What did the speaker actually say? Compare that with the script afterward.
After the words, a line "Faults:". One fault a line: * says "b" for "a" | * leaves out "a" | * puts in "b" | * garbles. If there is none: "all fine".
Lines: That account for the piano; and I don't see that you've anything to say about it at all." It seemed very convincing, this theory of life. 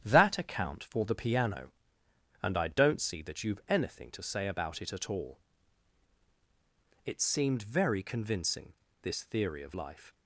That account for the piano; and I don't see that you've anything to say about it at all." It seemed very convincing, this theory of life.
Faults:
all fine